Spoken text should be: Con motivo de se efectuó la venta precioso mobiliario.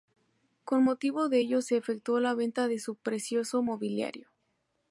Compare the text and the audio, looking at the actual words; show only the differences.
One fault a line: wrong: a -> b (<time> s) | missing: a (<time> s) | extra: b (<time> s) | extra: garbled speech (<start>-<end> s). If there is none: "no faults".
extra: ello (1.4 s)
extra: de su (2.7 s)